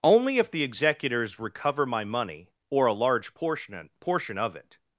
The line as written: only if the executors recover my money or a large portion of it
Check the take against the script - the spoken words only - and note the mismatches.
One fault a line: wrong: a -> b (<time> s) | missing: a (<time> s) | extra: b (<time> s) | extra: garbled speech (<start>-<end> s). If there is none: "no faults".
extra: portion (4.0 s)